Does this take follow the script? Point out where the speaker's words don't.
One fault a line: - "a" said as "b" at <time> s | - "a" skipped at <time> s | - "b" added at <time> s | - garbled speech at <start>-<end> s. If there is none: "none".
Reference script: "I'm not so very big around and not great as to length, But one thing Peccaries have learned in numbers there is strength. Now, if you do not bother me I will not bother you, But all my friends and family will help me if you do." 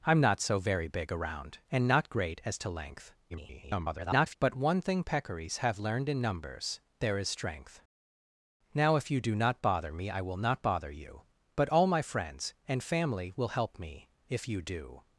- garbled speech at 3.3-4.4 s